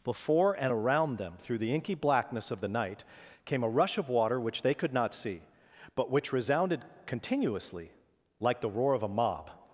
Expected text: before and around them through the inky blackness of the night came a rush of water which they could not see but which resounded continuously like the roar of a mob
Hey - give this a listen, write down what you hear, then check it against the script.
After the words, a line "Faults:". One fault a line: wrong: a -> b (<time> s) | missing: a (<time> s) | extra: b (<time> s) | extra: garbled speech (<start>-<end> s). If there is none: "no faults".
before and around them through the inky blackness of the night came a rush of water which they could not see but which resounded continuously like the roar of a mob
Faults:
no faults